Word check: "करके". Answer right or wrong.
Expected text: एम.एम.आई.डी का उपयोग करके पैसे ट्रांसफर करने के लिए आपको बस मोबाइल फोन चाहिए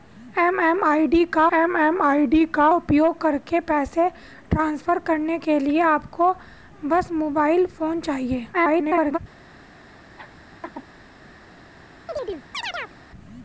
right